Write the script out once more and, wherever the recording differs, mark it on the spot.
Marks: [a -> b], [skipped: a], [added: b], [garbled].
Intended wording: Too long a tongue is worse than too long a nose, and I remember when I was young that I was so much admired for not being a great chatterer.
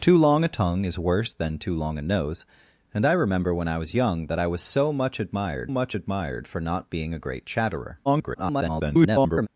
Too long a tongue is worse than too long a nose, and I remember when I was young that I was so much admired [added: much admired] for not being a great chatterer. [garbled]